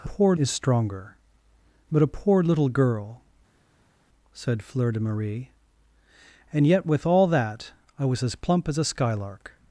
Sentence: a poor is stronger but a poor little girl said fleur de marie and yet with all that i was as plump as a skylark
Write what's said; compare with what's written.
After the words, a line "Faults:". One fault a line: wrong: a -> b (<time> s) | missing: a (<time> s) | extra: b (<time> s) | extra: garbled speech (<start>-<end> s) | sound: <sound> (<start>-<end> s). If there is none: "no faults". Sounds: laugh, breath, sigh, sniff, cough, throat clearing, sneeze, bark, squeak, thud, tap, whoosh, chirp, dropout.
a poor is stronger but a poor little girl said fleur de marie and yet with all that i was as plump as a skylark
Faults:
no faults